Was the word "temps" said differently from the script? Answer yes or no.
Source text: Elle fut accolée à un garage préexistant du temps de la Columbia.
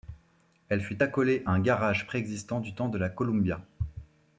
no